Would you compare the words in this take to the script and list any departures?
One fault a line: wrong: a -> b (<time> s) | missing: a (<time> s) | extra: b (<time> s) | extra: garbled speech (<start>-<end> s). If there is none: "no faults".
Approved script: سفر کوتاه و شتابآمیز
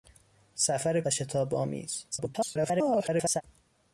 missing: کوتاه (1.0 s)
extra: garbled speech (2.1-3.4 s)